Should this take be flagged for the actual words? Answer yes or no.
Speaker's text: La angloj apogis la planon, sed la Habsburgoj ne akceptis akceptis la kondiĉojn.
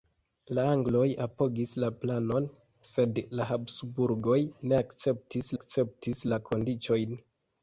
no